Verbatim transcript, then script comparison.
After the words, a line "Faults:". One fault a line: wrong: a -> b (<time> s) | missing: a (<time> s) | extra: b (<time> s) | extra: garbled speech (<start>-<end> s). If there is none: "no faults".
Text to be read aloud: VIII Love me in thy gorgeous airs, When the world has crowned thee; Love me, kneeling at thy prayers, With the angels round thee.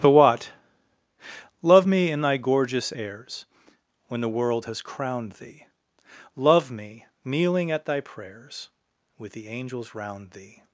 The what Love me in thy gorgeous airs, When the world has crowned thee; Love me, kneeling at thy prayers, With the angels round thee.
Faults:
wrong: VIII -> The what (0.0 s)